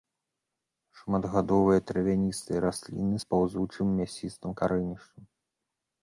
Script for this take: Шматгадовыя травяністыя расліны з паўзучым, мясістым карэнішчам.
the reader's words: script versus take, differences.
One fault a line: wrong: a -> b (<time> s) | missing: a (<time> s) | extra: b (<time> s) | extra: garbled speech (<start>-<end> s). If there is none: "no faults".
no faults